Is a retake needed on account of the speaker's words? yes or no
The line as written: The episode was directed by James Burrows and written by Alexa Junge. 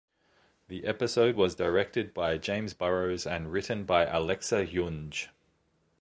no